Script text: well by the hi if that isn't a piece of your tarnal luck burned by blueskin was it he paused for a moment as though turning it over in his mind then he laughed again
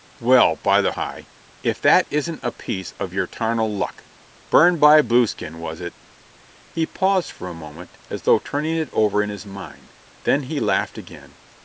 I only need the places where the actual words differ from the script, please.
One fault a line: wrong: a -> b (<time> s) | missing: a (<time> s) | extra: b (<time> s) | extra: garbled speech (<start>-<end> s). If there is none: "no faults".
no faults